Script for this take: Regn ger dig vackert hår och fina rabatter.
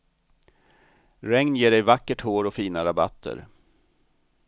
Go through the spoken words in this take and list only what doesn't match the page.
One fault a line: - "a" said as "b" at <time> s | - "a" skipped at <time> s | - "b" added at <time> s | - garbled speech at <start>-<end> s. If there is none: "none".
none